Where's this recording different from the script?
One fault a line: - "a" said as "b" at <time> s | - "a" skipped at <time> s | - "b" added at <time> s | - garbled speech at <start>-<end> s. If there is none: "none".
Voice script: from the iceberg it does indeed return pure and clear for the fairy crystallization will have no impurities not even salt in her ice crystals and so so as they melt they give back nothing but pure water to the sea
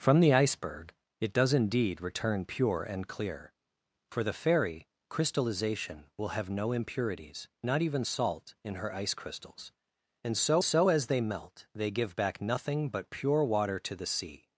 none